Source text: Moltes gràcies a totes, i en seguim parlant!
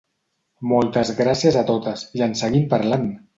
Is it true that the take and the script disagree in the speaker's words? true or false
false